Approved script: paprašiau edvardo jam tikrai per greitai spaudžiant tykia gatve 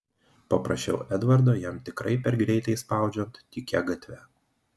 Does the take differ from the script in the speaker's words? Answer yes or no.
no